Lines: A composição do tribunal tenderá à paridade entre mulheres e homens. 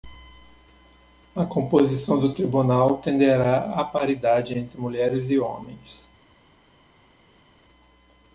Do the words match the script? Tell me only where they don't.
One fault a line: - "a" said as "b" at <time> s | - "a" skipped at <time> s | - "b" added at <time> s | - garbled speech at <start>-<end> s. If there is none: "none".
none